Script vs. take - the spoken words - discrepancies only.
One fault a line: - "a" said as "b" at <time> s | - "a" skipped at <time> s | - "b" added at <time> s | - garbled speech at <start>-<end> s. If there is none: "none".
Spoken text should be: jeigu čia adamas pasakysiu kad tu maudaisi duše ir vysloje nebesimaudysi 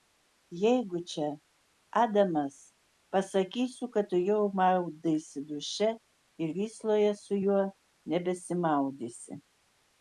- "jau" added at 4.3 s
- "su juo" added at 7.2 s